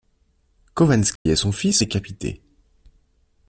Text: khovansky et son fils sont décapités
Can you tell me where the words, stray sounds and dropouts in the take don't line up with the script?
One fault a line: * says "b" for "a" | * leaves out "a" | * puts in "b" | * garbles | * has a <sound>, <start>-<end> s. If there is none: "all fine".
* has a dropout, 1.2-1.3 s
* leaves out "sont"